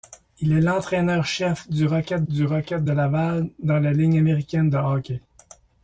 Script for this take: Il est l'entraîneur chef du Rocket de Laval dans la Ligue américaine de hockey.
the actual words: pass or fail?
fail